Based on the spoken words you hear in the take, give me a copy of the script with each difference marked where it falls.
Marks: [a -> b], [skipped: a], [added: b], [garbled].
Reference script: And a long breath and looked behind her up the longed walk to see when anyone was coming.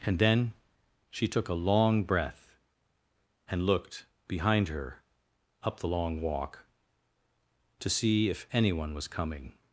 And [added: then she took] a long breath and looked behind her up the [longed -> long] walk to see [when -> if] anyone was coming.